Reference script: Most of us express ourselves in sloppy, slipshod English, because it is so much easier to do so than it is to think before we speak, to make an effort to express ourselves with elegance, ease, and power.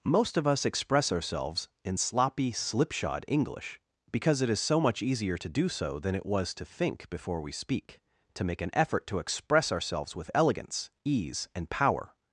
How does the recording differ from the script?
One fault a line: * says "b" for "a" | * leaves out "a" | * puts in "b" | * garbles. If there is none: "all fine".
* says "was" for "is"